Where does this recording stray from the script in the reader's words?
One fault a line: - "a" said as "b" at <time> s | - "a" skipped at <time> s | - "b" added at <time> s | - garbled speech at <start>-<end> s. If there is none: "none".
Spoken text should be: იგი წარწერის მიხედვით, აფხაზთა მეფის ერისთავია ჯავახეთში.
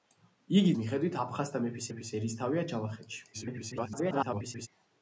- "წარწერის" skipped at 0.7 s
- "მეფის" added at 1.9 s
- garbled speech at 3.3-4.7 s